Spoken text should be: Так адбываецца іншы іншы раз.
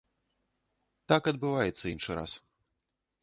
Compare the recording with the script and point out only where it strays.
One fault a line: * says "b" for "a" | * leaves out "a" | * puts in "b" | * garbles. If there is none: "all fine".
* leaves out "іншы"